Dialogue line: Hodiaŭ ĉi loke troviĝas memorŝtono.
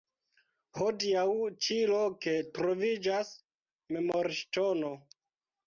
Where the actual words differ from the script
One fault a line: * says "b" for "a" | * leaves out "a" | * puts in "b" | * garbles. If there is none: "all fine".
all fine